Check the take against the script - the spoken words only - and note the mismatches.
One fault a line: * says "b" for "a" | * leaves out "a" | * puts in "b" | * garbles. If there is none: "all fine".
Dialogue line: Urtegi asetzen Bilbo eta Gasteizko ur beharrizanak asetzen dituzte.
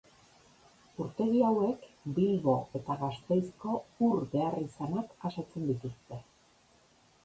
* says "hauek" for "asetzen"